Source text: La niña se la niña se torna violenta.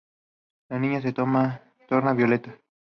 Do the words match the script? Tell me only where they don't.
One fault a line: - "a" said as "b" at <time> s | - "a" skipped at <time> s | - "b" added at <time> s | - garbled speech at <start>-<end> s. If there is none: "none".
- "la niña se" skipped at 1.1 s